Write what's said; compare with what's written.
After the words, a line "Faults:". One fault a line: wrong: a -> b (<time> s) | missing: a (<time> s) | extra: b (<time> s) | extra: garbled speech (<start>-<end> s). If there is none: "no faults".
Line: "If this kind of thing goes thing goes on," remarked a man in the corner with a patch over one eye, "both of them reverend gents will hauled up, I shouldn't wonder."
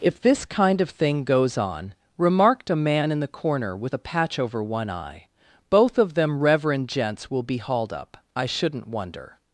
"If this kind of thing goes on," remarked a man in the corner with a patch over one eye, "both of them reverend gents will be hauled up, I shouldn't wonder."
Faults:
missing: thing goes (1.6 s)
extra: be (7.4 s)